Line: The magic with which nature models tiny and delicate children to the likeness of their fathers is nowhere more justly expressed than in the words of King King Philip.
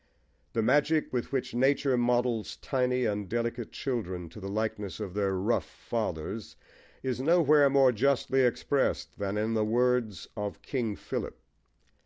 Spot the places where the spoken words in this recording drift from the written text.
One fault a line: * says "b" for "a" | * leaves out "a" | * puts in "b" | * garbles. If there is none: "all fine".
* puts in "rough"
* leaves out "King"